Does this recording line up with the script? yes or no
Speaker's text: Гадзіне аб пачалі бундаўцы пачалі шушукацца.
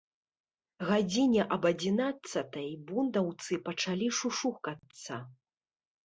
no